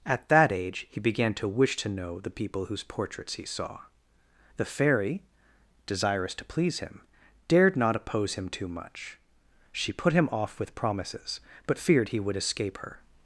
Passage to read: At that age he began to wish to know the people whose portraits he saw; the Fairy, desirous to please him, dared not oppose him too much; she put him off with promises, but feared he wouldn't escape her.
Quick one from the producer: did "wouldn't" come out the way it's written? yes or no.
no